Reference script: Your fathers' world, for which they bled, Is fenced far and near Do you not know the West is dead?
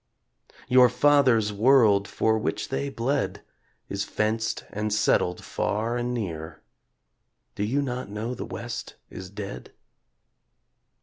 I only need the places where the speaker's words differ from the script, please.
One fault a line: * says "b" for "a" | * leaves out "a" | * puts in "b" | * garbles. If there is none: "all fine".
* puts in "and settled"